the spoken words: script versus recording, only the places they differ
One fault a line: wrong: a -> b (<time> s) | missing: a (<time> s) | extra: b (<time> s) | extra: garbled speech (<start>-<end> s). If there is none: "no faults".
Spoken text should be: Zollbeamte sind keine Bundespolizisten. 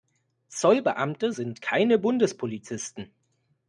no faults